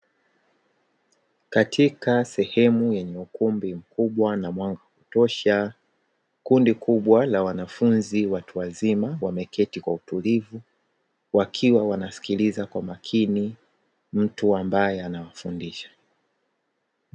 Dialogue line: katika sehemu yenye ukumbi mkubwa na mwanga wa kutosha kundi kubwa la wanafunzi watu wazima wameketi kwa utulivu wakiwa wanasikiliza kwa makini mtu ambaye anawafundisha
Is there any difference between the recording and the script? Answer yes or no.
no